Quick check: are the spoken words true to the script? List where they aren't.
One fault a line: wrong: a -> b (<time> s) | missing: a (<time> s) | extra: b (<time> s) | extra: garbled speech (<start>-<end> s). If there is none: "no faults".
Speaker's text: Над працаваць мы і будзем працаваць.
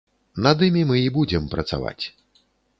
wrong: працаваць -> імі (0.7 s)